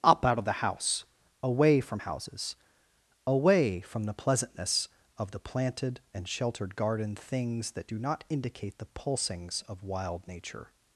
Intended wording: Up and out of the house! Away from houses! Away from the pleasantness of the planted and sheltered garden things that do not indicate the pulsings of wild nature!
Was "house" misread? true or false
false